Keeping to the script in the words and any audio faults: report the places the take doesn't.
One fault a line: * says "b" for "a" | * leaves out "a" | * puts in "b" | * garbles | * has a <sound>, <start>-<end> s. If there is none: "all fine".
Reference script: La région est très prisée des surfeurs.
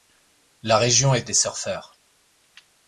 * leaves out "très prisée"